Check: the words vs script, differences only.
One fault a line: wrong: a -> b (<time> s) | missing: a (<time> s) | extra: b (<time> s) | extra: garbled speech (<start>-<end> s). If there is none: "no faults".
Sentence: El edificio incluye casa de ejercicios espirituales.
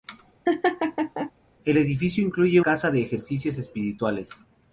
no faults